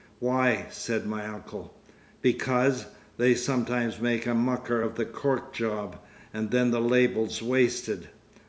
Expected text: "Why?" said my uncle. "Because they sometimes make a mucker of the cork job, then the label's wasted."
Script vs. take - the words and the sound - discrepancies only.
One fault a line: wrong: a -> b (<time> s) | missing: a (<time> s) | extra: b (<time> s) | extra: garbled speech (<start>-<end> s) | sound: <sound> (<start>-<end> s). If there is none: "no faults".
extra: and (6.3 s)